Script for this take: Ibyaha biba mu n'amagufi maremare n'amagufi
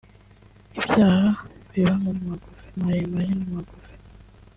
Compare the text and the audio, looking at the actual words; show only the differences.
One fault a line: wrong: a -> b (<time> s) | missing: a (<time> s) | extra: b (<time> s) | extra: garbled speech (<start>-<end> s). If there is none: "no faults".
no faults